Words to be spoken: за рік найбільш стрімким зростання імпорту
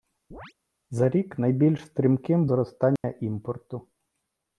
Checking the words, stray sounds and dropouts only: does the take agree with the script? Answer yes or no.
no